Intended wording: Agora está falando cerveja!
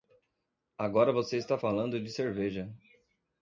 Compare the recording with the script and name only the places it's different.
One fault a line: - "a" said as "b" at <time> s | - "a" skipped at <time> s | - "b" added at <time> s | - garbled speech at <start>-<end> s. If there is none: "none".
- "você" added at 1.1 s
- "de" added at 2.0 s